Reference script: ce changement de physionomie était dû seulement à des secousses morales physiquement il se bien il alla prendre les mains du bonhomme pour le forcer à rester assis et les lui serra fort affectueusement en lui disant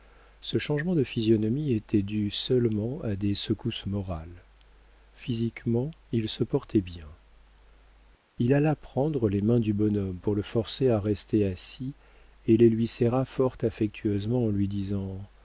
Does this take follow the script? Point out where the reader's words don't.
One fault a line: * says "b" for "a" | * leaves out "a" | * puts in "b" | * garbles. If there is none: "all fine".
* puts in "portait"